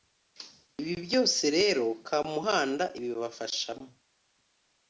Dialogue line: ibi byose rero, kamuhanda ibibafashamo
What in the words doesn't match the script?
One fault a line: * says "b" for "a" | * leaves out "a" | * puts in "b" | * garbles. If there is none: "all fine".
all fine